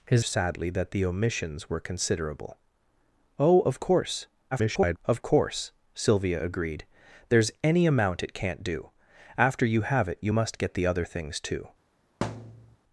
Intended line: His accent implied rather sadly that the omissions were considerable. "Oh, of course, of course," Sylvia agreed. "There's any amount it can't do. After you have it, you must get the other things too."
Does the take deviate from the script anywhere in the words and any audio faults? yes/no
yes